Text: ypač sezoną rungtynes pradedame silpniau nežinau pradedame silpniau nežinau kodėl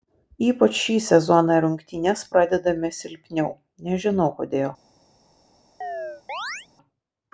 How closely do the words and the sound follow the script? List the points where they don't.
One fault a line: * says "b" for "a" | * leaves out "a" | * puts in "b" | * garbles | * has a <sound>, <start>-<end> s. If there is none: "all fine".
* puts in "šį"
* leaves out "pradedame silpniau nežinau"
* has a chirp, 5.8-6.7 s